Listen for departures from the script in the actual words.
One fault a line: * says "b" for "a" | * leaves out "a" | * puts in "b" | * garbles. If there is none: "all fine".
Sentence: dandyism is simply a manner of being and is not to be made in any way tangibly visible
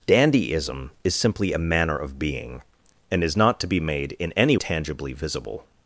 * leaves out "way"